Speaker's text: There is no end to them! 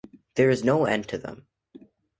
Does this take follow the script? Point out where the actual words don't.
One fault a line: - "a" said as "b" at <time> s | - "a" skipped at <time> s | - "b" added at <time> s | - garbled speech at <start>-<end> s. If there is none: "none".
none